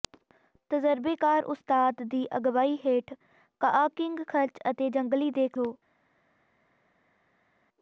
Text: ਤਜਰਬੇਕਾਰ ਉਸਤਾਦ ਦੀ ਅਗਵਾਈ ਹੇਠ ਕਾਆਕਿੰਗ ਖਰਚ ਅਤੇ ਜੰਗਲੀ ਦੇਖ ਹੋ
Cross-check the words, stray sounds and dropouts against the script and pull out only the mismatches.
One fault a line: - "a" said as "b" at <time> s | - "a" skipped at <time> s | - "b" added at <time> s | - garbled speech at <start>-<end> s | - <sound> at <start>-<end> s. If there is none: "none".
none